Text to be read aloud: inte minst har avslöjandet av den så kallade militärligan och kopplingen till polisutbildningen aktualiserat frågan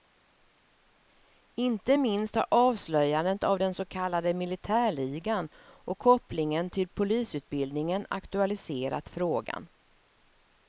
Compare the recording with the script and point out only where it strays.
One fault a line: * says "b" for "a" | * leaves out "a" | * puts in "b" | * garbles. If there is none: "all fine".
all fine